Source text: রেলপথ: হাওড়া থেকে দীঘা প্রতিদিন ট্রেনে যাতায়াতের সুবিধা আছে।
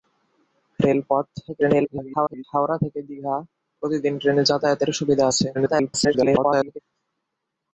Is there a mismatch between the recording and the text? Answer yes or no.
yes